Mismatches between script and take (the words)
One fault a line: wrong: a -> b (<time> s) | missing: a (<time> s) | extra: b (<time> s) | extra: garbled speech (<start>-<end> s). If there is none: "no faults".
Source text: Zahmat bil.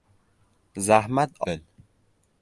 no faults